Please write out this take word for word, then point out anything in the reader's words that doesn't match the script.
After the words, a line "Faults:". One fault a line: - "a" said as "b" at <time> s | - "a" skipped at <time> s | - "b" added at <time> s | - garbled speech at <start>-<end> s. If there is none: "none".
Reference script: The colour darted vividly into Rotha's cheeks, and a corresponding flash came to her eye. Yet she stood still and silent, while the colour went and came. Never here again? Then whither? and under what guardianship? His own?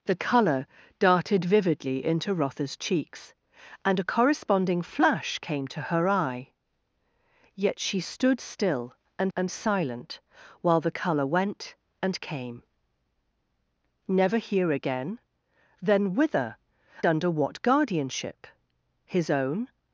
The colour darted vividly into Rotha's cheeks, and a corresponding flash came to her eye. Yet she stood still and and silent, while the colour went and came. Never here again? Then whither? under what guardianship? His own?
Faults:
- "and" added at 9.4 s
- "and" skipped at 16.6 s